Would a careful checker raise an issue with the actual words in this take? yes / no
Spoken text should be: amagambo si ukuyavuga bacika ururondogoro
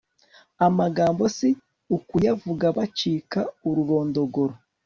no